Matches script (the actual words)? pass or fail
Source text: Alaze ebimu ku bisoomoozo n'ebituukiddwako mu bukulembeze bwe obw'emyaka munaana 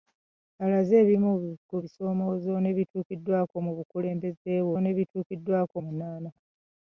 fail